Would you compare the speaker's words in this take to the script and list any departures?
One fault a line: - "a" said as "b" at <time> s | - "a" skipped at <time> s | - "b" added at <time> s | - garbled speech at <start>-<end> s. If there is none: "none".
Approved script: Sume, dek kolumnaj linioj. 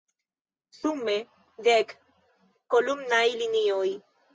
none